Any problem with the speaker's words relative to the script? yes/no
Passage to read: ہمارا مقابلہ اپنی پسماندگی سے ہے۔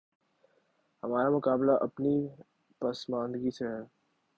no